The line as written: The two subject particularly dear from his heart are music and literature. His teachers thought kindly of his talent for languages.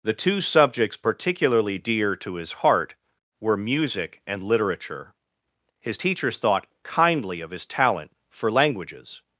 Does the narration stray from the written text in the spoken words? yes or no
yes